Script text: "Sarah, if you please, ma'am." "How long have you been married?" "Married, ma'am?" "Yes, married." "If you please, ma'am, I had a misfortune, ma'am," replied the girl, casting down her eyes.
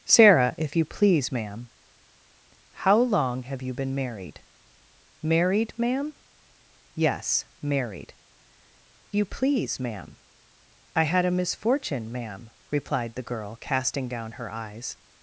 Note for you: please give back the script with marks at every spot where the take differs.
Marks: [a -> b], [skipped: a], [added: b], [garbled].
"Sarah, if you please, ma'am." "How long have you been married?" "Married, ma'am?" "Yes, married." [skipped: "If] you please, ma'am, I had a misfortune, ma'am," replied the girl, casting down her eyes.